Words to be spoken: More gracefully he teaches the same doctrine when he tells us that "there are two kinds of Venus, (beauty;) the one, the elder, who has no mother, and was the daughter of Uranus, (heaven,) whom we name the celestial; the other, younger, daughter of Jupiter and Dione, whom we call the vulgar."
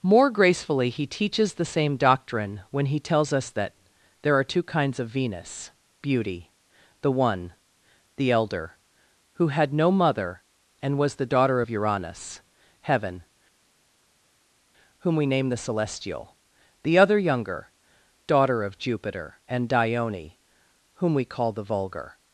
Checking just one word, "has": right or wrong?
wrong